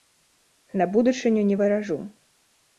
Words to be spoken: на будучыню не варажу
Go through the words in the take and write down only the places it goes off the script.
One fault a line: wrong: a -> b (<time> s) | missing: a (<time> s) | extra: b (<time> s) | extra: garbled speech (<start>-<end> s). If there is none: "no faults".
no faults